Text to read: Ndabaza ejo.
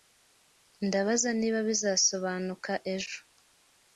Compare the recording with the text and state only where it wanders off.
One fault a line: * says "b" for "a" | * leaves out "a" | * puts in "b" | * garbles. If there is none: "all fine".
* puts in "niba bizasobanuka"